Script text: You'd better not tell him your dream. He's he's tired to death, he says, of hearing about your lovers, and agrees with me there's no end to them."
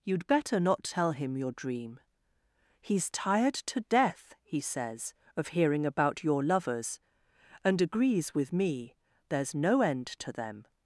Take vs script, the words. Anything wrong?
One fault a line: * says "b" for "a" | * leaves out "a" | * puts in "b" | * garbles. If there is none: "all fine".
* leaves out "he's"